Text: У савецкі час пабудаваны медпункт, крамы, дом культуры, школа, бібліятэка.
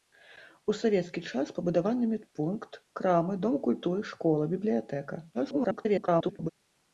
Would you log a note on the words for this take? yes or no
yes